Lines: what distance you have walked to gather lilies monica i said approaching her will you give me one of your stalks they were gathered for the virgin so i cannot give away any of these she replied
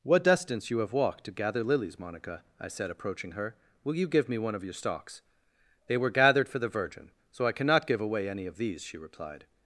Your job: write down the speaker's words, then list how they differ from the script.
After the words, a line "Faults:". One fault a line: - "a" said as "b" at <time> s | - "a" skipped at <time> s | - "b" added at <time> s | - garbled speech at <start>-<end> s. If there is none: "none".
what distance you have walked to gather lilies monica i said approaching her will you give me one of your stalks they were gathered for the virgin so i cannot give away any of these she replied
Faults:
none